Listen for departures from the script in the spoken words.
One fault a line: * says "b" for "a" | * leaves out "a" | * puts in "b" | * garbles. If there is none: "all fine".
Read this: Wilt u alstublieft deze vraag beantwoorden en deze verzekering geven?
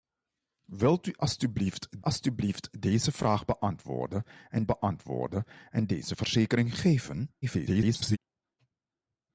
* puts in "alstublieft"
* puts in "beantwoorden en"
* garbles